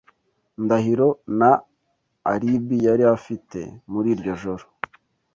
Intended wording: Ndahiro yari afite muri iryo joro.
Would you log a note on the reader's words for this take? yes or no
yes